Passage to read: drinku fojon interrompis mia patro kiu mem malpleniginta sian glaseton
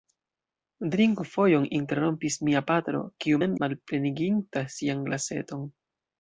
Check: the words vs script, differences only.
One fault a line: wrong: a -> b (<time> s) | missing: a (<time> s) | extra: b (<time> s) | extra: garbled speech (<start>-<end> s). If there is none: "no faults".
no faults